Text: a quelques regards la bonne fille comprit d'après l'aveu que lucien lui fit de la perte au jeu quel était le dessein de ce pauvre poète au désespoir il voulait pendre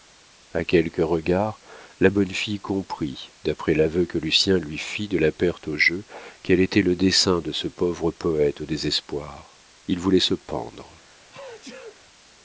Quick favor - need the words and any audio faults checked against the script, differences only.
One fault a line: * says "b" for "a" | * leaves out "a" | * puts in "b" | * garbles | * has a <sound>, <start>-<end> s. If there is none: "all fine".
* puts in "se"
* has a sneeze, 11.3-12.0 s